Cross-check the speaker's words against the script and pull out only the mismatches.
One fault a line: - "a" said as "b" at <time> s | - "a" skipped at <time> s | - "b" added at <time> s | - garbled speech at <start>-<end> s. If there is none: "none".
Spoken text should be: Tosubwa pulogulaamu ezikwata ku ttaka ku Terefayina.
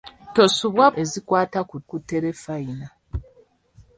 - "pulogulaamu" skipped at 0.8 s
- "ttaka" skipped at 1.8 s